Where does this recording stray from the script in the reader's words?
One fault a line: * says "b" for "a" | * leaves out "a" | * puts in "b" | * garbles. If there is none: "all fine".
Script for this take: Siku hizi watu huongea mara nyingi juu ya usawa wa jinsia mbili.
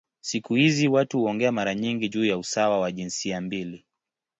all fine